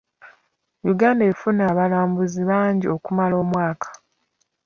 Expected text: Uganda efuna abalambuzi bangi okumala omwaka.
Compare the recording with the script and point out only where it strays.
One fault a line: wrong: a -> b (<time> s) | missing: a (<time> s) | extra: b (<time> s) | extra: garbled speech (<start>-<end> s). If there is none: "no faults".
no faults